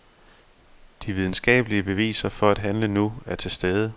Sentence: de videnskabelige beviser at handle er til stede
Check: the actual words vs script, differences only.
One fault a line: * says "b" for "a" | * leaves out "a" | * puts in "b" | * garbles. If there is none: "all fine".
* puts in "for"
* puts in "nu"